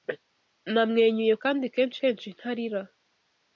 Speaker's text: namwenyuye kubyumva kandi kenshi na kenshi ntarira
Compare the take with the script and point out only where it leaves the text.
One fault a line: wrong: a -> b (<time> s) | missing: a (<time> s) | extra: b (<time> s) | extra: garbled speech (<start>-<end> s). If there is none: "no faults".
missing: kubyumva (1.3 s)
missing: na (2.0 s)